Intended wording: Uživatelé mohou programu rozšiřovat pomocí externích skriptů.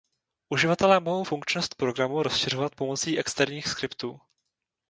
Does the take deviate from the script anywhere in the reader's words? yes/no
yes